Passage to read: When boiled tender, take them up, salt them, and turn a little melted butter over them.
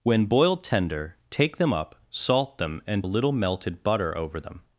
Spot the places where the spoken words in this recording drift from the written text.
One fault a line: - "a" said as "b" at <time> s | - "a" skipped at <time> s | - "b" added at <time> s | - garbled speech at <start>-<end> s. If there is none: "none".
- "turn" skipped at 3.0 s